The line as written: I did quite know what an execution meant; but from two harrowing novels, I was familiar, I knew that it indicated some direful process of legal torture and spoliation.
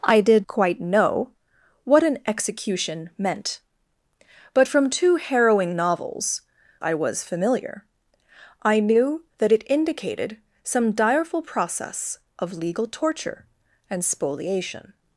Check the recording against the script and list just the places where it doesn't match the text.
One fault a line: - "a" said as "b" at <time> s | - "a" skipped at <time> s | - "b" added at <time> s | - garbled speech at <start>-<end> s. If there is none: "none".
none